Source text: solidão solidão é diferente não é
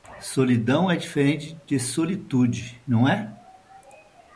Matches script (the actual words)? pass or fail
fail